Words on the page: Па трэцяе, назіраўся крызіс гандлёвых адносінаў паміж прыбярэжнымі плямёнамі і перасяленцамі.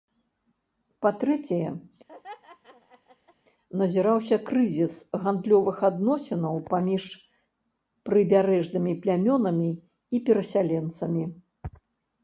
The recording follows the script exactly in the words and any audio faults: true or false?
false